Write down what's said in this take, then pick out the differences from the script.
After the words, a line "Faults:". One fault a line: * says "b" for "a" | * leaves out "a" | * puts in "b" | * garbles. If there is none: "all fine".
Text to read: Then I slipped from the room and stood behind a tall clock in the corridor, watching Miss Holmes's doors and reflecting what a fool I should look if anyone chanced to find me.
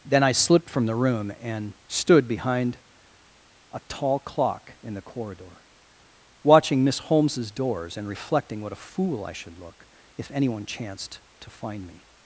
Then I slipped from the room and stood behind a tall clock in the corridor, watching Miss Holmes's doors and reflecting what a fool I should look if anyone chanced to find me.
Faults:
all fine